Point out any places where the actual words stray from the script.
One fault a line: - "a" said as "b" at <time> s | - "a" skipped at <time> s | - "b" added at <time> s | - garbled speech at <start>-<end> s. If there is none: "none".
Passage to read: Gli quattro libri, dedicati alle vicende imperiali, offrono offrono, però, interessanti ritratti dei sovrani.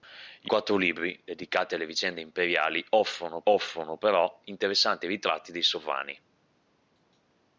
none